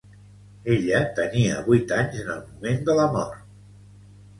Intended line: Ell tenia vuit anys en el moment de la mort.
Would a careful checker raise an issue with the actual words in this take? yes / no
yes